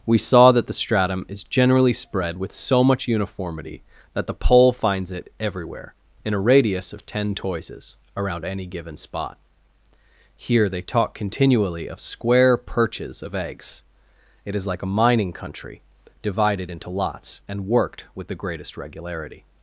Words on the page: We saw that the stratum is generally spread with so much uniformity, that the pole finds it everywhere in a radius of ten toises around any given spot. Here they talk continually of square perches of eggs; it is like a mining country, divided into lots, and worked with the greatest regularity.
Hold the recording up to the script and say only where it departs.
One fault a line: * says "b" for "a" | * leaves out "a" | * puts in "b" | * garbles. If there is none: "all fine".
all fine